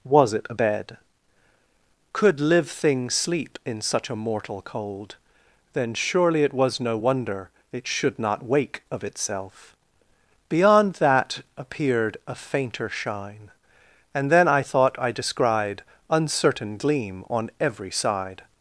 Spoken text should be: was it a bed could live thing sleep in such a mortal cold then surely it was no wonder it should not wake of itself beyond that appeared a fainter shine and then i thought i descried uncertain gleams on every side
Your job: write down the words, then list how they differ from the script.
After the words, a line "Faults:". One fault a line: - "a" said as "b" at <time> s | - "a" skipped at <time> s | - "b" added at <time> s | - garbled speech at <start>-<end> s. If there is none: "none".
was it a bed could live thing sleep in such a mortal cold then surely it was no wonder it should not wake of itself beyond that appeared a fainter shine and then i thought i descried uncertain gleam on every side
Faults:
- "gleams" said as "gleam" at 16.8 s